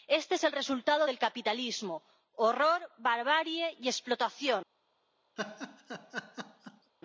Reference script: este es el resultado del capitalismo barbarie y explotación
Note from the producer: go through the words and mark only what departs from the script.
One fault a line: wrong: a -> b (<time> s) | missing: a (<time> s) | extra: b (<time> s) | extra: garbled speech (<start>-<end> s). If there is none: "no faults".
extra: horror (2.4 s)